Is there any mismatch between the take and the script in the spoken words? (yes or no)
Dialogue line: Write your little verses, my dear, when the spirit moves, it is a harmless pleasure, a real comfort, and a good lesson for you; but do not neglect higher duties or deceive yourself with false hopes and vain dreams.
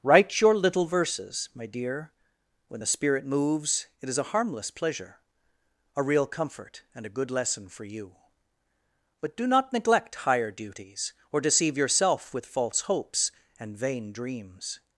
no